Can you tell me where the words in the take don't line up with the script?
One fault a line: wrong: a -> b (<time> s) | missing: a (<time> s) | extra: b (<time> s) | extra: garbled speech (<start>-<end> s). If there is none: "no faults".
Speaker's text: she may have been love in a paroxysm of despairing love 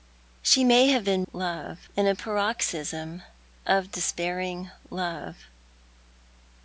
no faults